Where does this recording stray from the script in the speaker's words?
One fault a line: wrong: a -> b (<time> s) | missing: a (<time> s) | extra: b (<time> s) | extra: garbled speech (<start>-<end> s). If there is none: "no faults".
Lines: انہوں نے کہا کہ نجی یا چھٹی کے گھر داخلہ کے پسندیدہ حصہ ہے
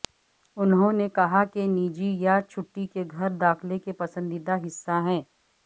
no faults